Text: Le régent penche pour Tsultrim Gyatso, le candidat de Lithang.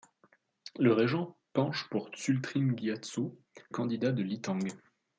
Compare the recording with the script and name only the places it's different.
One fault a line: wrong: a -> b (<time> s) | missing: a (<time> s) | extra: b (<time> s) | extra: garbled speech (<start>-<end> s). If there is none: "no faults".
missing: le (3.4 s)